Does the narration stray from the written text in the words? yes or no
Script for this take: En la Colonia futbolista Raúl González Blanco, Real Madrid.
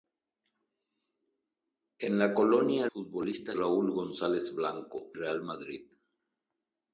no